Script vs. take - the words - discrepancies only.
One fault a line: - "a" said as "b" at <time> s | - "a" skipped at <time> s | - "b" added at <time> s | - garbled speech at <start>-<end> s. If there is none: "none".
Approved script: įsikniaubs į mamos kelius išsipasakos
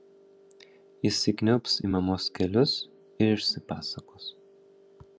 - "ir" added at 3.3 s